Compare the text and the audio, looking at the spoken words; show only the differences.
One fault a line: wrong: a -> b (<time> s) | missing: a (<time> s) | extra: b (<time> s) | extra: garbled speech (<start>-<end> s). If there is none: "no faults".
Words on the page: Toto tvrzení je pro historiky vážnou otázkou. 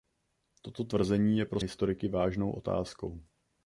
no faults